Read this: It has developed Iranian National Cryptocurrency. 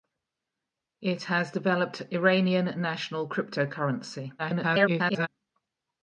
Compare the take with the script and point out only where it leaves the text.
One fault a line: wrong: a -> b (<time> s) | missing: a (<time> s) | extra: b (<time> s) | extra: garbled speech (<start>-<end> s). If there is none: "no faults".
extra: garbled speech (4.4-5.3 s)